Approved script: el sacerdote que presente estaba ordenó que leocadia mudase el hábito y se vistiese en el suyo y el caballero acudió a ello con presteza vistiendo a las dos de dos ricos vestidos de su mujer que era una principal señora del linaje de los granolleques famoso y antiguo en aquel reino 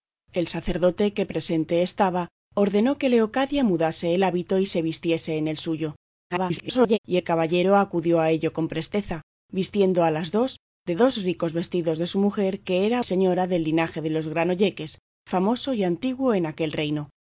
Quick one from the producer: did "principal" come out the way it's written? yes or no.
no